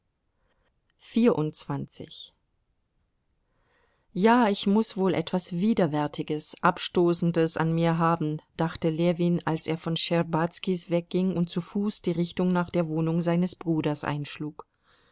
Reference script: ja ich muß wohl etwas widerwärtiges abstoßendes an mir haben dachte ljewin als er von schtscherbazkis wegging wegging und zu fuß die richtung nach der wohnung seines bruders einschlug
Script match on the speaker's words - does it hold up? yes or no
no